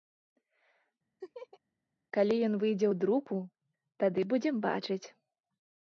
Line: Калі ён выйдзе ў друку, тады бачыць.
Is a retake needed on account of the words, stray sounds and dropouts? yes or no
yes